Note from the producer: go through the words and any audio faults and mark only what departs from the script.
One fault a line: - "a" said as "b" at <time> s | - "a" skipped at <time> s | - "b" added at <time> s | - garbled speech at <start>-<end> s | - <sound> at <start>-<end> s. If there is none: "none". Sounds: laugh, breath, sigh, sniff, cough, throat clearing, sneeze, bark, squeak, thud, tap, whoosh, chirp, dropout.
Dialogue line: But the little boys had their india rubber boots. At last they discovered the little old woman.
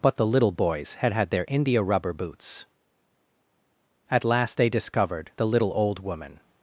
- "had" added at 1.1 s